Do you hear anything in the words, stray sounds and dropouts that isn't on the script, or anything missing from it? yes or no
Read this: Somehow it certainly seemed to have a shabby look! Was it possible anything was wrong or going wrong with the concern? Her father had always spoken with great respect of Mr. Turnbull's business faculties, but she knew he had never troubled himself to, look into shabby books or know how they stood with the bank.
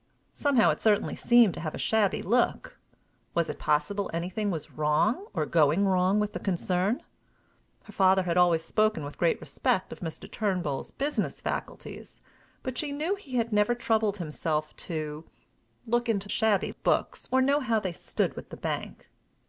no